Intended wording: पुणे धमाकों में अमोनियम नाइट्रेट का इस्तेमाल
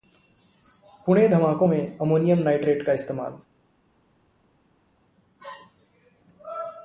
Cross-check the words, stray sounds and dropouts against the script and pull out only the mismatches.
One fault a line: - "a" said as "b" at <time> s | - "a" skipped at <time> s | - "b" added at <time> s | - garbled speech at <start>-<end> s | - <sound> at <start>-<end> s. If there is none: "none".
none